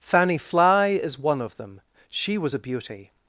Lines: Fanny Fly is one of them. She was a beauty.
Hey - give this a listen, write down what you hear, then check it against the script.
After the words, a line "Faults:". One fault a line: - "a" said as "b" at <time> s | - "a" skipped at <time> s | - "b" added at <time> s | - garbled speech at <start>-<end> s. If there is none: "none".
Fanny Fly is one of them. She was a beauty.
Faults:
none